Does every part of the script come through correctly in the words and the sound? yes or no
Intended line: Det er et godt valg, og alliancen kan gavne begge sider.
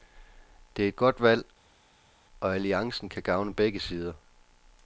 yes